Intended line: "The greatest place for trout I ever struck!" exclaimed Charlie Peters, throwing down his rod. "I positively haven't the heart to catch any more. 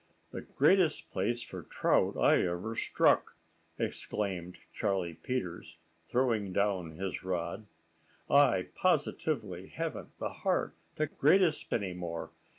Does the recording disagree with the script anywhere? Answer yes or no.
yes